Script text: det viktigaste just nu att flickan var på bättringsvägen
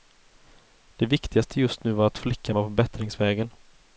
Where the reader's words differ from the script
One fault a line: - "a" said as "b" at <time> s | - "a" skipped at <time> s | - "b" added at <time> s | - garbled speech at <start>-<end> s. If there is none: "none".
- "var" added at 1.9 s